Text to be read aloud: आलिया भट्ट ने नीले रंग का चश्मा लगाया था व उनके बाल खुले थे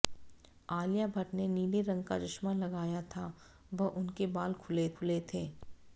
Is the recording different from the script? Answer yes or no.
yes